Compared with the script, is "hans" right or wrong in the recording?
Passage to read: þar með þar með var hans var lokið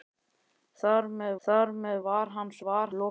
right